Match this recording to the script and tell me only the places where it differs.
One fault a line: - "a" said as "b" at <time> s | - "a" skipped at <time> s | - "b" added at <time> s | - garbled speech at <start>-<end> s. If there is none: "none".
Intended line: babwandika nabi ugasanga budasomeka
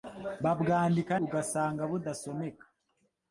- "nabi" skipped at 1.1 s